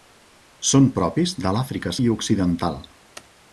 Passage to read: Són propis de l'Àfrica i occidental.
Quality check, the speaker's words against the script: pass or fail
pass